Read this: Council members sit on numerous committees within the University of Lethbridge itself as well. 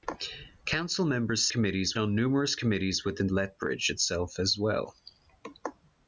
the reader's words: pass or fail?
fail